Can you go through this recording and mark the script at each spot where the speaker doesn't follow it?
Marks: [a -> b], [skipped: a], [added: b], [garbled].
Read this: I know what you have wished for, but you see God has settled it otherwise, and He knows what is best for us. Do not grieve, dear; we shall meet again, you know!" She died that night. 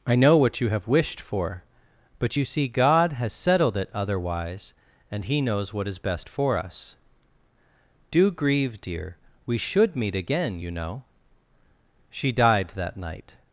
I know what you have wished for, but you see God has settled it otherwise, and He knows what is best for us. Do [skipped: not] grieve, dear; we [shall -> should] meet again, you know!" She died that night.